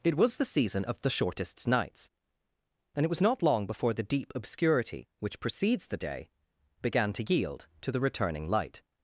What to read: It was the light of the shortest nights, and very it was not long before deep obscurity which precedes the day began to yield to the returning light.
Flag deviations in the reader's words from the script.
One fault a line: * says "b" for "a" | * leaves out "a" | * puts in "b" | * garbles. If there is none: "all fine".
* says "season" for "light"
* leaves out "very"
* puts in "the"